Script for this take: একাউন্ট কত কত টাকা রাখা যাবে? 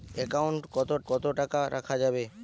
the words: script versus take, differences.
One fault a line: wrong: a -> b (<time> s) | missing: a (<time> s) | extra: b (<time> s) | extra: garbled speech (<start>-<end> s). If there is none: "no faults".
no faults